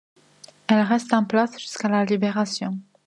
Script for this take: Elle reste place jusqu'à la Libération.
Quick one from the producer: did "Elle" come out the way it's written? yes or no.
yes